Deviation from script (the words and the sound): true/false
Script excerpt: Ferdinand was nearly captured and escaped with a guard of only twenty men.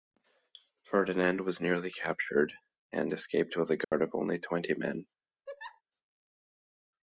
true